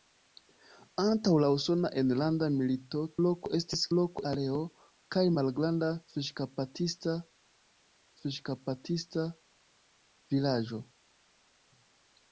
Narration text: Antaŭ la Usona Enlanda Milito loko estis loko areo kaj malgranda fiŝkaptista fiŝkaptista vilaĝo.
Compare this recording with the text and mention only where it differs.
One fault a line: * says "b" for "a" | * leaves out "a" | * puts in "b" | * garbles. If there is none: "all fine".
all fine